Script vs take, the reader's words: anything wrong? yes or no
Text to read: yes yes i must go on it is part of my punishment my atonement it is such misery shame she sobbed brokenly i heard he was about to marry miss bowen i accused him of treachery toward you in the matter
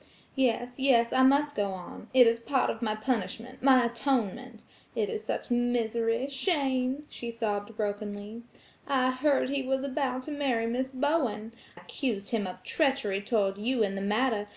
yes